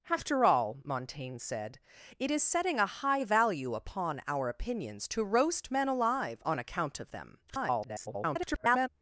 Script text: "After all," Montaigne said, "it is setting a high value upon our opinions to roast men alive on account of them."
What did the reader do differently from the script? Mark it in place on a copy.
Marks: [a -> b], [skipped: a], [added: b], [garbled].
"After all," Montaigne said, "it is setting a high value upon our opinions to roast men alive on account of them." [garbled]